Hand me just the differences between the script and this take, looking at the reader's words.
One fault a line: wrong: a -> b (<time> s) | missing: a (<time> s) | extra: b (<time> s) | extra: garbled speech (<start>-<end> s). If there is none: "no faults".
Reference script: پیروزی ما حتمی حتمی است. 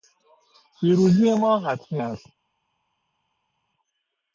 missing: حتمی (2.0 s)